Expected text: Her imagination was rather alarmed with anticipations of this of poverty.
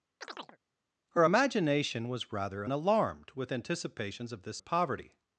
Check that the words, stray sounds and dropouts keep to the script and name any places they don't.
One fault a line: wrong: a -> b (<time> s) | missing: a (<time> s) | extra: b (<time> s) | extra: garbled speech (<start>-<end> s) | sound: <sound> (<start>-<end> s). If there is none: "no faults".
sound: chirp (0.2-0.6 s)